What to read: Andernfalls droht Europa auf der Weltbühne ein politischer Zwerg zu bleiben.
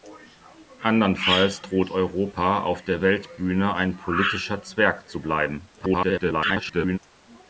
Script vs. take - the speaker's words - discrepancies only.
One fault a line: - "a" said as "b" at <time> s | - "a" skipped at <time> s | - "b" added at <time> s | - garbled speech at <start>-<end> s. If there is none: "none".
- garbled speech at 5.8-7.0 s